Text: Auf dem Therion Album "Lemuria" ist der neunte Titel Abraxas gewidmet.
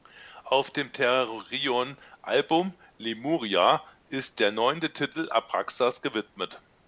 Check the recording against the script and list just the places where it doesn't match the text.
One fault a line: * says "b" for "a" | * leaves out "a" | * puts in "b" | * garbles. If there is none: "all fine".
all fine